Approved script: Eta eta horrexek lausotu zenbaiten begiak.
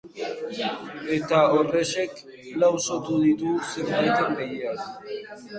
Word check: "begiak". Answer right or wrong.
right